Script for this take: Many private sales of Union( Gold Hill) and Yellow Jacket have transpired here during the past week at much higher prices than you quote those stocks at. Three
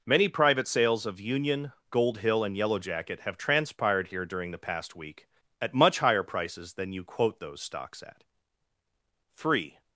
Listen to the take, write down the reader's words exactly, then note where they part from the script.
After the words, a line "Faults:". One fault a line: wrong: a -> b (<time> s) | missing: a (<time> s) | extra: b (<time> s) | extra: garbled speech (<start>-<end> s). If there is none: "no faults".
Many private sales of Union( Gold Hill) and Yellow Jacket have transpired here during the past week at much higher prices than you quote those stocks at. Three
Faults:
no faults